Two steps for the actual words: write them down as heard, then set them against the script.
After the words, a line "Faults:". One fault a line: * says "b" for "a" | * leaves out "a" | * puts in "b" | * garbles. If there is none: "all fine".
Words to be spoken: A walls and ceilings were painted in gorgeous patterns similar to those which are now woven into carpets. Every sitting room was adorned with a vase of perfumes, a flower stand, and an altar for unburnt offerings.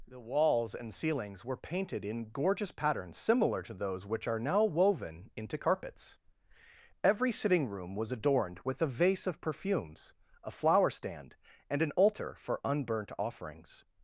The walls and ceilings were painted in gorgeous patterns similar to those which are now woven into carpets. Every sitting room was adorned with a vase of perfumes, a flower stand, and an altar for unburnt offerings.
Faults:
* says "The" for "A"